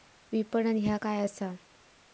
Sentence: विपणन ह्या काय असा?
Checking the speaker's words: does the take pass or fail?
pass